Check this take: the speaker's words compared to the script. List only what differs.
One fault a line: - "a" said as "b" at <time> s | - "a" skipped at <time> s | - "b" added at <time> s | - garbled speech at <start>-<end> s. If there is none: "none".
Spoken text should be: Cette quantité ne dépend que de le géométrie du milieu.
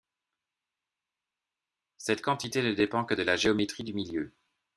- "le" said as "la" at 3.2 s